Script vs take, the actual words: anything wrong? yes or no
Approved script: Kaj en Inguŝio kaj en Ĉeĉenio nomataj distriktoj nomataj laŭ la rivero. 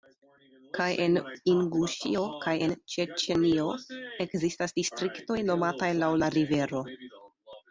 yes